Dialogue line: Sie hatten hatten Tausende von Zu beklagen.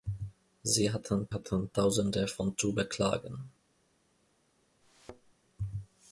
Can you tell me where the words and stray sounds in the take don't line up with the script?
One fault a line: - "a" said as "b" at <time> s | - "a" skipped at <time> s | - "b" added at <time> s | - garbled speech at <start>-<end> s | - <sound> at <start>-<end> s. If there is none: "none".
- thud at 4.8-5.3 s